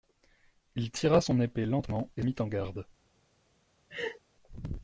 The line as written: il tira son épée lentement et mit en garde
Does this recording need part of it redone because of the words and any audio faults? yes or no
yes